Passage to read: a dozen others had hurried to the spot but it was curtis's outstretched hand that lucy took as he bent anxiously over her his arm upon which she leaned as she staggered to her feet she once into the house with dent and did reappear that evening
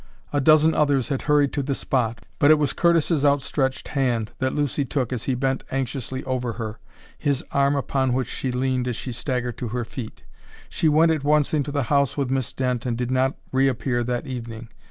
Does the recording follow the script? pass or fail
fail